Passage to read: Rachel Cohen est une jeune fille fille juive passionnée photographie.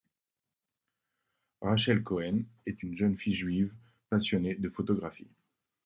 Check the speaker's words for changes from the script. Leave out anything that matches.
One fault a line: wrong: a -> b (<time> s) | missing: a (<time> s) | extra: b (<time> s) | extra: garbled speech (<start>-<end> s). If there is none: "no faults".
missing: fille (3.3 s)
extra: de (4.5 s)